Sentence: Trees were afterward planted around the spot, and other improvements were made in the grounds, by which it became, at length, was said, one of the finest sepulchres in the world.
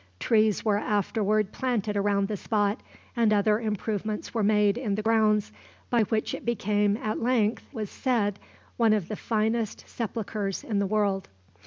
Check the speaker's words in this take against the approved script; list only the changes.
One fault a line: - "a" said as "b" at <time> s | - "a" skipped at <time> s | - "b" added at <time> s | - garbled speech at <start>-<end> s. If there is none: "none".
none